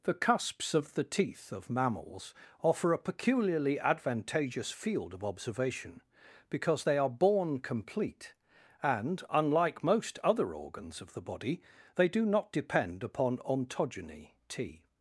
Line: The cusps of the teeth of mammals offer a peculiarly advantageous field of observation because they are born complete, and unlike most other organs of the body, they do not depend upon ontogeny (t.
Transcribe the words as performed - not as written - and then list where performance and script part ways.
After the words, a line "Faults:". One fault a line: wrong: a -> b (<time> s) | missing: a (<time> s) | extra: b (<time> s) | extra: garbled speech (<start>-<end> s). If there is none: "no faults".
The cusps of the teeth of mammals offer a peculiarly advantageous field of observation because they are born complete, and unlike most other organs of the body, they do not depend upon ontogeny (t.
Faults:
no faults